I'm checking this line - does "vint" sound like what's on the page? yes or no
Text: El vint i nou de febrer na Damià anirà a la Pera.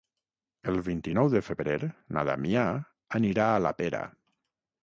yes